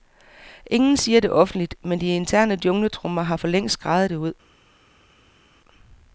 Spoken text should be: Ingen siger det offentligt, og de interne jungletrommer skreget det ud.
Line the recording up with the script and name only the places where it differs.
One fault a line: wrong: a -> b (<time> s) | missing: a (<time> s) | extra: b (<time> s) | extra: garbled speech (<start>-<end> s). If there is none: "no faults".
wrong: og -> men (1.8 s)
extra: har forlængst (3.2 s)